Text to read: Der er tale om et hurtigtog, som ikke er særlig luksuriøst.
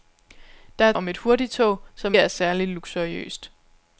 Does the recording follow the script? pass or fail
fail